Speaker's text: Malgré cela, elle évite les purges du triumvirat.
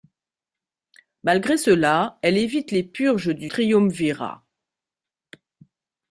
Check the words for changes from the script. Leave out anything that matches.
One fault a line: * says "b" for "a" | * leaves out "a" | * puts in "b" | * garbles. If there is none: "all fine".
all fine